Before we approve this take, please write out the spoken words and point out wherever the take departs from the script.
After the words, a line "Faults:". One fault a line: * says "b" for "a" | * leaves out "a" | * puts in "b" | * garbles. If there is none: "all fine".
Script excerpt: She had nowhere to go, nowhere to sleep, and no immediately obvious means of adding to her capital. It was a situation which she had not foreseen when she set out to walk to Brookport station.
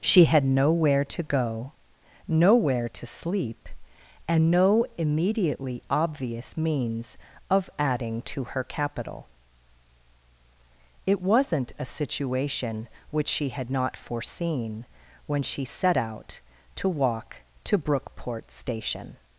She had nowhere to go, nowhere to sleep, and no immediately obvious means of adding to her capital. It wasn't a situation which she had not foreseen when she set out to walk to Brookport station.
Faults:
* says "wasn't" for "was"